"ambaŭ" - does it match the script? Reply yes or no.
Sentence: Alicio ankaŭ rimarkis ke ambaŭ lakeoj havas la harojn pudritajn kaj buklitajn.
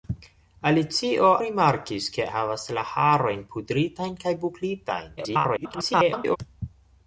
no